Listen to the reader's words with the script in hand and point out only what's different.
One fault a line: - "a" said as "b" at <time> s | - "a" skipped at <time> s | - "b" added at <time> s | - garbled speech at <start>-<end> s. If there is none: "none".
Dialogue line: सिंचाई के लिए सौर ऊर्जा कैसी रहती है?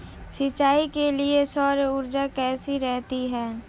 none